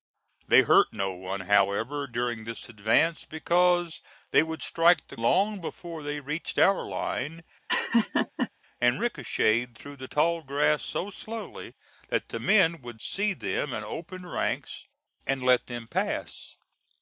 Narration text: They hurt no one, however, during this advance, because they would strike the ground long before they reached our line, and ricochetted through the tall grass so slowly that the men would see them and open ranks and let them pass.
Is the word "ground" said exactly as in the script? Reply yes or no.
no